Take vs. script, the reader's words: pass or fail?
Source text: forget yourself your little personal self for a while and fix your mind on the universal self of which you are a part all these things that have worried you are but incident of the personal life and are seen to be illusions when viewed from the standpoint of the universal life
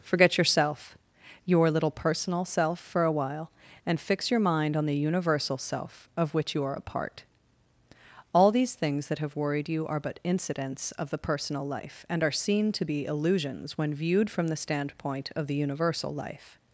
fail